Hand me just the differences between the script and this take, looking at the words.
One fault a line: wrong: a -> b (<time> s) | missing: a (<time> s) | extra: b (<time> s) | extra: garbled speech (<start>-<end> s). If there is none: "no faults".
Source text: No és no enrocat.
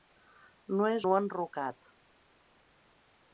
no faults